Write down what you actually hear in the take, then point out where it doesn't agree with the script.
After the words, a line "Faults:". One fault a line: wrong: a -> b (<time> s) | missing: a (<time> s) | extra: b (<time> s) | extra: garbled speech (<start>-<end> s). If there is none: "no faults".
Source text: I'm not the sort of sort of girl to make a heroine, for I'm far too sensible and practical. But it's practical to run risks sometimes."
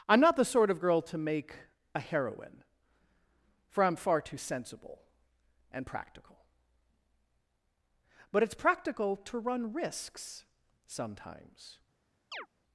I'm not the sort of girl to make a heroine, for I'm far too sensible and practical. But it's practical to run risks sometimes."
Faults:
missing: sort of (0.8 s)